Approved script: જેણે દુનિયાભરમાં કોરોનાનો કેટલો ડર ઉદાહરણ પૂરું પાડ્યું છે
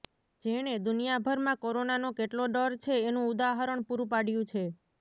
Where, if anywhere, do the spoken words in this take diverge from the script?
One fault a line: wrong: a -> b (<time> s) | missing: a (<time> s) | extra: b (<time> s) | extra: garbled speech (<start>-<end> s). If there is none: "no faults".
extra: છે એનું (2.8 s)